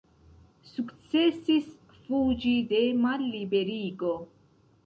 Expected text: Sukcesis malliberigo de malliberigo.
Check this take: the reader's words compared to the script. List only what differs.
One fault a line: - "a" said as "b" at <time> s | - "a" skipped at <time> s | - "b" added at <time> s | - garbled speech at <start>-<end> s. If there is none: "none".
- "malliberigo" said as "fuĝi" at 2.0 s